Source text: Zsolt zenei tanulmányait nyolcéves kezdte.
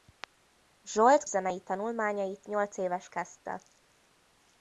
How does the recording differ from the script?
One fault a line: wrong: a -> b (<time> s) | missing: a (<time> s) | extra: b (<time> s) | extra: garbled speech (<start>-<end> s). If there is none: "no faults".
no faults